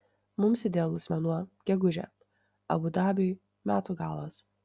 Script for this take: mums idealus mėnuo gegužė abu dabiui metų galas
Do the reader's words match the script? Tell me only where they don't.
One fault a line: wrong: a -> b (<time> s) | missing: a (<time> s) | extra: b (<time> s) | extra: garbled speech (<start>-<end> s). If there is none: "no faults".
no faults